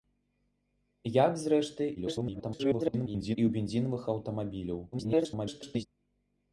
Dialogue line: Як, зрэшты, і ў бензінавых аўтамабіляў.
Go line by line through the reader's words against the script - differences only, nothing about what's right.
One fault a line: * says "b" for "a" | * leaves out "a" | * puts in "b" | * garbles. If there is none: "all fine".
* garbles
* garbles